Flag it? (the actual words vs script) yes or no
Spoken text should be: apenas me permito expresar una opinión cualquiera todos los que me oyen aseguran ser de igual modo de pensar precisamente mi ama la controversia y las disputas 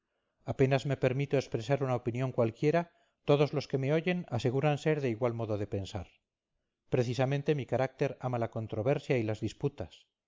yes